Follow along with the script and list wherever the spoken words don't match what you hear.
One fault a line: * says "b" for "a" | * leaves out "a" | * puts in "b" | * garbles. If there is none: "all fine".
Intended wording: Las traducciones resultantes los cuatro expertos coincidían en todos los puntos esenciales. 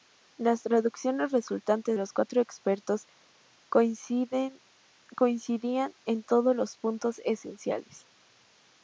all fine